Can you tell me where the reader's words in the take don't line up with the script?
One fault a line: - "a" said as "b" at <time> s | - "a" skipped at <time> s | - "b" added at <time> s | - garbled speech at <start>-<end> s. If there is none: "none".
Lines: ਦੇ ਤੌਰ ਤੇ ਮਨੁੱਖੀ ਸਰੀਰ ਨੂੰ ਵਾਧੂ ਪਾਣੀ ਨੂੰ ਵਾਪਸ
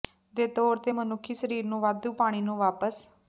none